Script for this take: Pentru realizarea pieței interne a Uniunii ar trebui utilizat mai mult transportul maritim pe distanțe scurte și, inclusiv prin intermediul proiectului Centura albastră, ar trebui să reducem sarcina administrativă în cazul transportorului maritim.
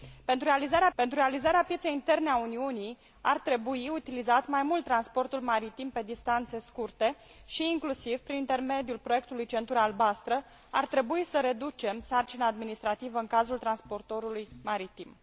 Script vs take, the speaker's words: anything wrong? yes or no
yes